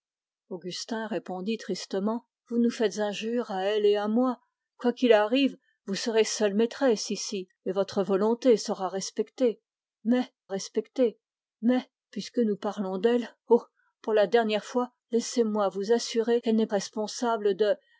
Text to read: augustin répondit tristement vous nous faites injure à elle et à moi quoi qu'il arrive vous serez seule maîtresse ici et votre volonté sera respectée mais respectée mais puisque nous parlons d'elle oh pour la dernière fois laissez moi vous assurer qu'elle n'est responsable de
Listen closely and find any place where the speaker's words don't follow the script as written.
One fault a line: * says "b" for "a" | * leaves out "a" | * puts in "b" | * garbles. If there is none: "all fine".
all fine